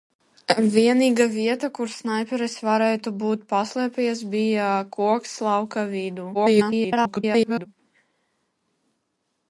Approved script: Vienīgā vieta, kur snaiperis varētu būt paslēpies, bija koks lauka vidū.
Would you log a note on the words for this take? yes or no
yes